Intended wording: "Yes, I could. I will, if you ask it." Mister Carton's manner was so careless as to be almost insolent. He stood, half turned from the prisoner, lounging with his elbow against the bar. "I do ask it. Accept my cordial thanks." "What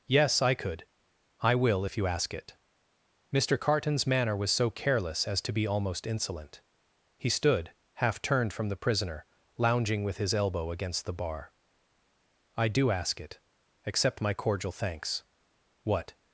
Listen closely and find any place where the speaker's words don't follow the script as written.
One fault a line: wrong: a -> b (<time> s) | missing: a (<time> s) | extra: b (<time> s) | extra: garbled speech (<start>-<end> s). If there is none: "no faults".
no faults